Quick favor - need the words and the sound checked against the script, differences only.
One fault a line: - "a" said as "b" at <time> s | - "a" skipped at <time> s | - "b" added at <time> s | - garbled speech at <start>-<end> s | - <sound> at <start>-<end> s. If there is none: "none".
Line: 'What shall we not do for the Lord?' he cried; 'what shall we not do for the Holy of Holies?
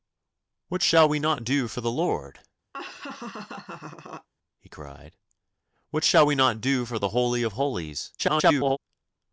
- laugh at 2.7-4.3 s
- garbled speech at 8.2-8.8 s